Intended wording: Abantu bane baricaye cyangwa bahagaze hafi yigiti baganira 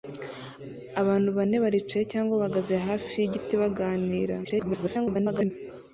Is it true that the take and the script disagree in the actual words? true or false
true